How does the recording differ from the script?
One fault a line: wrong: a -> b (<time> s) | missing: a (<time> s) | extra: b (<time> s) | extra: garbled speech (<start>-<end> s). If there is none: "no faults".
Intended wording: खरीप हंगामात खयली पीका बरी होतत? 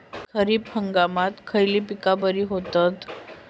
no faults